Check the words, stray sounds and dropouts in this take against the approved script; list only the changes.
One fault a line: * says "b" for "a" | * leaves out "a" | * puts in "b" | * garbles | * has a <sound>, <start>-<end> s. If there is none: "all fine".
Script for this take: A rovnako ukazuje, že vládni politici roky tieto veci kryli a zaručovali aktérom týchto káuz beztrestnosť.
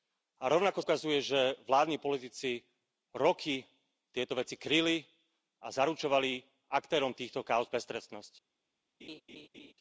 * has a laugh, 9.0-9.7 s